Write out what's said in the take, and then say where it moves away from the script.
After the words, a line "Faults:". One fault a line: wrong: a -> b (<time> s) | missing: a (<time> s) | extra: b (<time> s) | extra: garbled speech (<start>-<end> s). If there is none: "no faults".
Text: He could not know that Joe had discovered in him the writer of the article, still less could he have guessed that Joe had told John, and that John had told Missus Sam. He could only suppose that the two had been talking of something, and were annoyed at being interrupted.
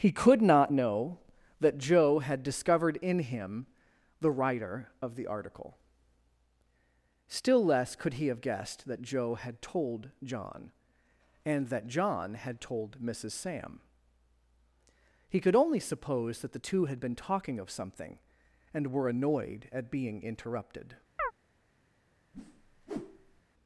He could not know that Joe had discovered in him the writer of the article, still less could he have guessed that Joe had told John, and that John had told Missus Sam. He could only suppose that the two had been talking of something, and were annoyed at being interrupted.
Faults:
no faults